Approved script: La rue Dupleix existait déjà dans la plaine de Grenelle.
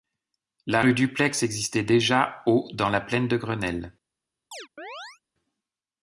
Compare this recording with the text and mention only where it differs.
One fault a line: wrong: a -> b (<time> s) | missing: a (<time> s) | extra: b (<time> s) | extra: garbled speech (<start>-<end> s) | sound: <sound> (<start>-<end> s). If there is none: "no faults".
extra: au (2.5 s)
sound: chirp (4.5-5.2 s)